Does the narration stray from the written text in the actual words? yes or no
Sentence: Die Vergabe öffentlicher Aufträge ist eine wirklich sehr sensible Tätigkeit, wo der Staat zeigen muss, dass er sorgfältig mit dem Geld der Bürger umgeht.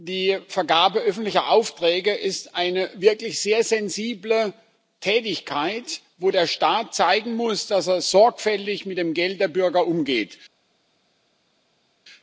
no